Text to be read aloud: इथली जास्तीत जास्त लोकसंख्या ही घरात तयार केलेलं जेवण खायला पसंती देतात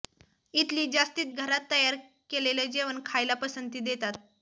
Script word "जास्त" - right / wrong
wrong